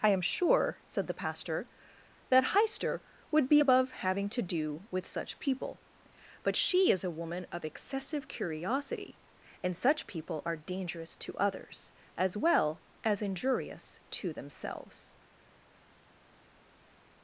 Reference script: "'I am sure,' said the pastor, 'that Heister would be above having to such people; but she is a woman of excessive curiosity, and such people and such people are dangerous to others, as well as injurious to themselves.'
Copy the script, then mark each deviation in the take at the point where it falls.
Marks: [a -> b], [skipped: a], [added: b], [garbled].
"'I am sure,' said the pastor, 'that Heister would be above having to [added: do with] such people; but she is a woman of excessive curiosity, and such people [skipped: and such people] are dangerous to others, as well as injurious to themselves.'